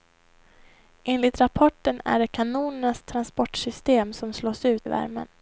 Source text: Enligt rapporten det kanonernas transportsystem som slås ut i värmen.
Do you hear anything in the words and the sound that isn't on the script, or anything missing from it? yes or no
yes